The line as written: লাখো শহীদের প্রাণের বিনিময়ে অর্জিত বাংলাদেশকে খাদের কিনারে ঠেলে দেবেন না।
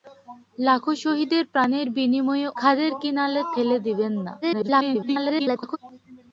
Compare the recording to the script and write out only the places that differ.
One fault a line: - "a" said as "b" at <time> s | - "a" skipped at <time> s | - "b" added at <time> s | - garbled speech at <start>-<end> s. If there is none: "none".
- "অর্জিত বাংলাদেশকে" skipped at 2.5 s
- garbled speech at 4.4-5.8 s